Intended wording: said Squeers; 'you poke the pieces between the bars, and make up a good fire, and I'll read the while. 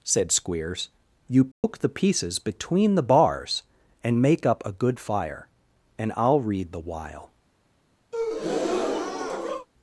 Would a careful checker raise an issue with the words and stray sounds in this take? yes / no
yes